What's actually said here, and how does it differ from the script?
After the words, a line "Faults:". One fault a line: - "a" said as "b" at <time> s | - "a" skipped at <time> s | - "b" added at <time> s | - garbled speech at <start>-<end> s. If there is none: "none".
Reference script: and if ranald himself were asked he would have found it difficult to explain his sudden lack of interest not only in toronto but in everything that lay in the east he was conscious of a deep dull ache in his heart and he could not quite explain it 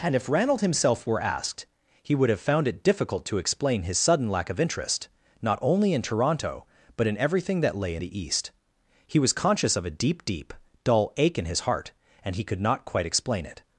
and if ranald himself were asked he would have found it difficult to explain his sudden lack of interest not only in toronto but in everything that lay in the east he was conscious of a deep deep dull ache in his heart and he could not quite explain it
Faults:
- "deep" added at 10.2 s